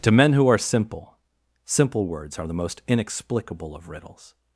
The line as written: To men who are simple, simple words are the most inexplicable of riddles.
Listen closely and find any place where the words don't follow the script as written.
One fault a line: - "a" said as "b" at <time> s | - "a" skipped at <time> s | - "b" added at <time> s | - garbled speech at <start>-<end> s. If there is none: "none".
none